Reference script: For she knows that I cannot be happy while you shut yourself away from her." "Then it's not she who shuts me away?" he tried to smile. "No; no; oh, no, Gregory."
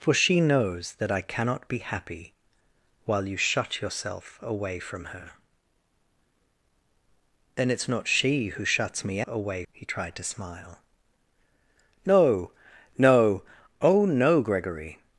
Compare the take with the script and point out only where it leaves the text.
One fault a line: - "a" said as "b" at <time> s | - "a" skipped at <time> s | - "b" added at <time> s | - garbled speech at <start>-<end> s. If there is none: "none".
none